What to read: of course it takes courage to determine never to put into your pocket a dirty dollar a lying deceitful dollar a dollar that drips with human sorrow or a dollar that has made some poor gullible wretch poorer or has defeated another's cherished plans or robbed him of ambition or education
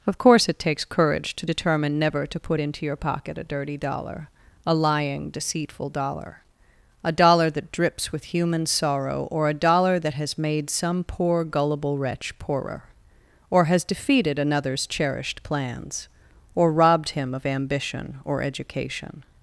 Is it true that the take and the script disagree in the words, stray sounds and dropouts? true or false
false